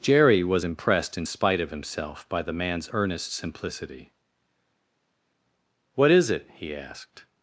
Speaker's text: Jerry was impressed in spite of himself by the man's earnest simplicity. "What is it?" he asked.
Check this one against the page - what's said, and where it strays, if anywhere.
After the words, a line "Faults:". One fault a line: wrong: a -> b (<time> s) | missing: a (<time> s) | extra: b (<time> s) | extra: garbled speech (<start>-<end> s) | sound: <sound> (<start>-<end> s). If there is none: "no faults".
Jerry was impressed in spite of himself by the man's earnest simplicity. "What is it?" he asked.
Faults:
no faults